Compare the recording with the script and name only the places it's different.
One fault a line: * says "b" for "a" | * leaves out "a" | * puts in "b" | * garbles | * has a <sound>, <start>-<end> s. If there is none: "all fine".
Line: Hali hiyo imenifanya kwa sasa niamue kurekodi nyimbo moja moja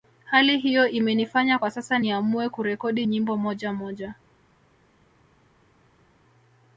all fine